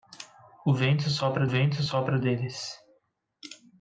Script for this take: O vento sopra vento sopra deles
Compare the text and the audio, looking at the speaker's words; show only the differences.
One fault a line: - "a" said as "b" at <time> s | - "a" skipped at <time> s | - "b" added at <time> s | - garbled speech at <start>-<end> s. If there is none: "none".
none